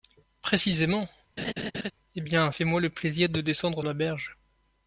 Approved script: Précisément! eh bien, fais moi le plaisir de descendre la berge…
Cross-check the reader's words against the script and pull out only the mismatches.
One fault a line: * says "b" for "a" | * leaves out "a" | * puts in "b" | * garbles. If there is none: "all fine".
all fine